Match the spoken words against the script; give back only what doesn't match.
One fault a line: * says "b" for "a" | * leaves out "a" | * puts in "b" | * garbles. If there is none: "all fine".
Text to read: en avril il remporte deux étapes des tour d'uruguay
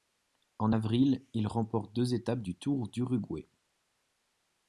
* says "du" for "des"